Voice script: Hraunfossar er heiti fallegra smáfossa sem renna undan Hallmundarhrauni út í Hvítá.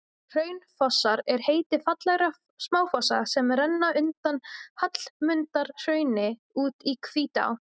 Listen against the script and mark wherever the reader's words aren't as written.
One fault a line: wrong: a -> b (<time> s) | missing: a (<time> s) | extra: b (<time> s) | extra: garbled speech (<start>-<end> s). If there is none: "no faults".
no faults